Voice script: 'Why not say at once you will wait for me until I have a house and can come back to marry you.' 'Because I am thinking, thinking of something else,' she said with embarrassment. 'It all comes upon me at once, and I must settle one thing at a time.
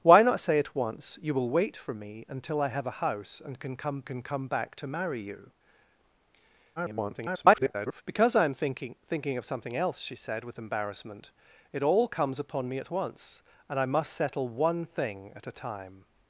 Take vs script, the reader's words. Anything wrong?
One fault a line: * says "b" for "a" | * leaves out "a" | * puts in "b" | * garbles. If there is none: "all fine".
* puts in "can come"
* garbles